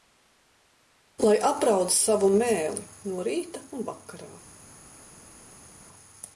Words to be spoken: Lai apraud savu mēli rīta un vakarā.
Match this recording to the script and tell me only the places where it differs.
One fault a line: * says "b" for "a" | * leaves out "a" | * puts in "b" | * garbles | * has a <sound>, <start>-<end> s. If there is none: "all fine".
* puts in "no"